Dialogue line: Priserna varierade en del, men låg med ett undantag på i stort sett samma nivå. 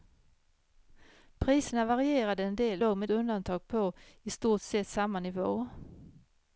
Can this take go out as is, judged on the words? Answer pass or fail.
fail